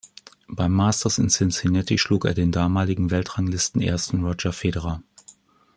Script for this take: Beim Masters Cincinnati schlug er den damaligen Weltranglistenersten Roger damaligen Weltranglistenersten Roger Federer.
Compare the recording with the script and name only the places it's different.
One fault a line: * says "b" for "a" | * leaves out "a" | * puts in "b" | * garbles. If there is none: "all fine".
* puts in "in"
* leaves out "damaligen Weltranglistenersten Roger"